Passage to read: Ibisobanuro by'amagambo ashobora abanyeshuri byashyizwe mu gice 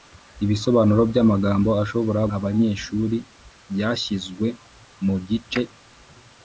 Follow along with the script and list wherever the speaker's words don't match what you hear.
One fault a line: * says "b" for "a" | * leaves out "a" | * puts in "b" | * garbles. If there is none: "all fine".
all fine